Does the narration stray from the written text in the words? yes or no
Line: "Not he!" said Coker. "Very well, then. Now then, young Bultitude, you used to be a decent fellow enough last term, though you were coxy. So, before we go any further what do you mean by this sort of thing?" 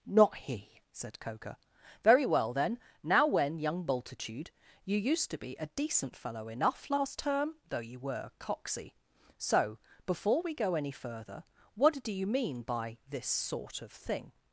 yes